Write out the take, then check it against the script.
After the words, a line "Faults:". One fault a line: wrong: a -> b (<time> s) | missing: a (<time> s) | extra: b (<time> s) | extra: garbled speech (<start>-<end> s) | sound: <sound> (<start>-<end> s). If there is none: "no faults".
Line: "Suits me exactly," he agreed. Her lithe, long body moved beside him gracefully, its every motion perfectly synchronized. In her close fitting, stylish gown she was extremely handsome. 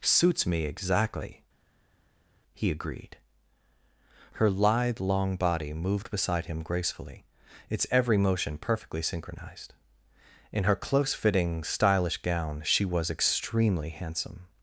"Suits me exactly," he agreed. Her lithe, long body moved beside him gracefully, its every motion perfectly synchronized. In her close fitting, stylish gown she was extremely handsome.
Faults:
no faults